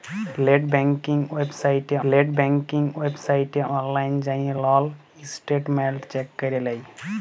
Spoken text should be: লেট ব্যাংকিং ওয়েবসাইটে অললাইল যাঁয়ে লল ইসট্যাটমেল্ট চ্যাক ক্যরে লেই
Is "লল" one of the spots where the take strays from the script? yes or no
no